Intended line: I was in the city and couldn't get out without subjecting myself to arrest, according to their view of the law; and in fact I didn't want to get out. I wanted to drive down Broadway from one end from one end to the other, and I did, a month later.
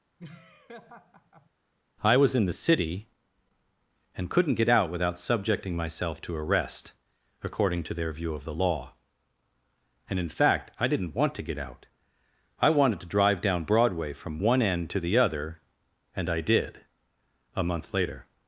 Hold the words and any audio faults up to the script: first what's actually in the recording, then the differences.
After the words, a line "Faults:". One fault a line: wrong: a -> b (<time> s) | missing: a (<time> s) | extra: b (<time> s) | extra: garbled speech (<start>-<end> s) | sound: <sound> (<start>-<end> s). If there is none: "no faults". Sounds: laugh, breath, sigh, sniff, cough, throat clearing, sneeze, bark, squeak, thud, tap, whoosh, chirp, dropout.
I was in the city and couldn't get out without subjecting myself to arrest, according to their view of the law; and in fact I didn't want to get out. I wanted to drive down Broadway from one end to the other, and I did, a month later.
Faults:
sound: laugh (0.2-1.5 s)
missing: from one end (14.9 s)